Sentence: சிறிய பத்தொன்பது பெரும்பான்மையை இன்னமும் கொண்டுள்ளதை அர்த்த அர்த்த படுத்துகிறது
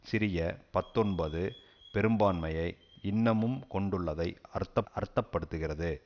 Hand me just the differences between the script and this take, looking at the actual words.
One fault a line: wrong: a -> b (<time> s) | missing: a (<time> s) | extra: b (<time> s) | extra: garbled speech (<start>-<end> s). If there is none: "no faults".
no faults